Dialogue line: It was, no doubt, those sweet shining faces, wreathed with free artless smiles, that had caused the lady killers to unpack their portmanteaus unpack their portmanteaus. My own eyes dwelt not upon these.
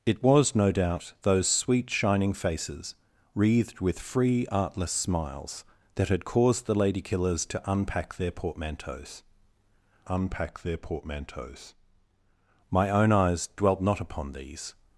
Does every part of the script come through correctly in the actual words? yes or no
yes